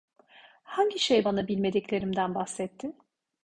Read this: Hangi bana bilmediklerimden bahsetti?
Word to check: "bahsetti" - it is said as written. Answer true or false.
true